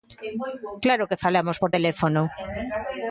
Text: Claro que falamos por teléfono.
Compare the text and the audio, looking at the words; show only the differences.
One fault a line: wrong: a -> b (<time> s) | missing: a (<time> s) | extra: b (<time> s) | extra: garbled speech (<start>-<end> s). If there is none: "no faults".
no faults